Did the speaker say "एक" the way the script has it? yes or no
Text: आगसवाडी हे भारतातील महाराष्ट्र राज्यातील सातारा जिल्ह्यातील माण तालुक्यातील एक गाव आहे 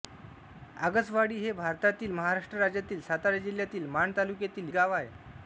no